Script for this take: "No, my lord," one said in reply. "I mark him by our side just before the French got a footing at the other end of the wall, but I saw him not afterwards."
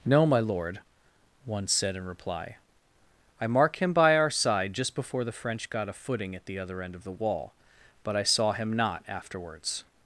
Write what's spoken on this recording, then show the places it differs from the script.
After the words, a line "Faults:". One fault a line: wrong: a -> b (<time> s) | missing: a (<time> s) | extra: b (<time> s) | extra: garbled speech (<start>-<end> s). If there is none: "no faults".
"No, my lord," one said in reply. "I mark him by our side just before the French got a footing at the other end of the wall, but I saw him not afterwards."
Faults:
no faults